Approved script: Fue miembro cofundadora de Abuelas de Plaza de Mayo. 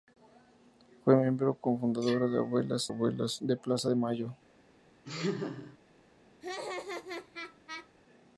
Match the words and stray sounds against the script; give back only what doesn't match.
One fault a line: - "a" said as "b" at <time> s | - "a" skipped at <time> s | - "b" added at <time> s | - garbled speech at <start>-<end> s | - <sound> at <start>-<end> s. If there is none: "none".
- "Abuelas" added at 2.9 s
- laugh at 5.0-5.8 s
- laugh at 6.4-7.9 s